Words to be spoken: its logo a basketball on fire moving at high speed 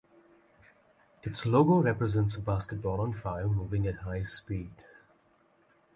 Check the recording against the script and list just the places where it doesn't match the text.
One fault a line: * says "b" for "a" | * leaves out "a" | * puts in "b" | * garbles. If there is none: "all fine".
* puts in "represents"